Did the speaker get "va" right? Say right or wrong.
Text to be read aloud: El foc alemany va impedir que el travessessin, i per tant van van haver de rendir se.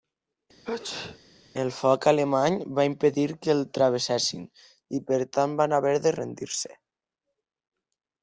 right